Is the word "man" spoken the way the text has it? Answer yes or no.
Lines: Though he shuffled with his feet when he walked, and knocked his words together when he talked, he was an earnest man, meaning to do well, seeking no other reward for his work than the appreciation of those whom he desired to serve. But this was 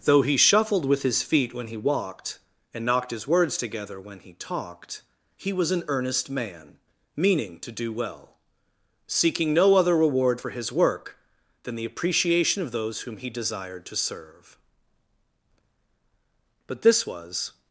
yes